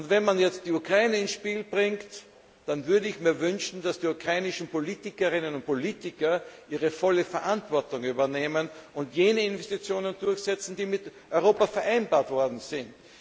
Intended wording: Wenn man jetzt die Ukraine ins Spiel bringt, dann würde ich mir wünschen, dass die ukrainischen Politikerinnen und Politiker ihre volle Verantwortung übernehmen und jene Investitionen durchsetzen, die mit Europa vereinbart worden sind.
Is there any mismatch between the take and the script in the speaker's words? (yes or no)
no